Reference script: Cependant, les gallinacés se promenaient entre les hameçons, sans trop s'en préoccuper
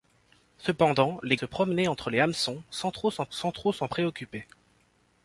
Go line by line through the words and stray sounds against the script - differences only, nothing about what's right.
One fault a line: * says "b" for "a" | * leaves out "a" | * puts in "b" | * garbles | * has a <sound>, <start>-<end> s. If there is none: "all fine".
* leaves out "gallinacés"
* puts in "sans trop s'en"